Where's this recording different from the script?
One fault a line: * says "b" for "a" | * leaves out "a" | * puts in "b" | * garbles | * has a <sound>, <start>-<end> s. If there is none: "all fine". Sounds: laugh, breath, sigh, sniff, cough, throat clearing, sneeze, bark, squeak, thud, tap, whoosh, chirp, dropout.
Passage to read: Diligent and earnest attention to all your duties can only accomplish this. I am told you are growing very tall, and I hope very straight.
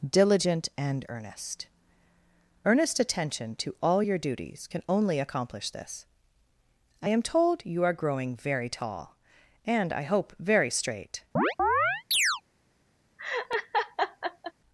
* puts in "earnest"
* has a chirp, 11.4-12.4 s
* has a laugh, 13.2-14.5 s